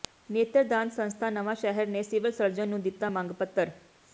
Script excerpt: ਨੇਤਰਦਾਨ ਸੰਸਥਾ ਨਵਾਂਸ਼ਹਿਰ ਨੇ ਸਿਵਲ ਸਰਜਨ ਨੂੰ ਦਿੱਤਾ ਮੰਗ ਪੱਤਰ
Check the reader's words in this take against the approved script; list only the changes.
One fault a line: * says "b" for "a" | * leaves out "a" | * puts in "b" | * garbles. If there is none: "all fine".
all fine